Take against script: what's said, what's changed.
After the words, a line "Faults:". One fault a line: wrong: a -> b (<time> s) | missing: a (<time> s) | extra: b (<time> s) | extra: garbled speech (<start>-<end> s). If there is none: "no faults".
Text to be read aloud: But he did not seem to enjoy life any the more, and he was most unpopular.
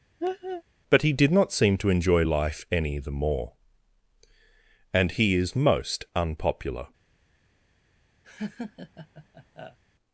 But he did not seem to enjoy life any the more, and he is most unpopular.
Faults:
wrong: was -> is (5.3 s)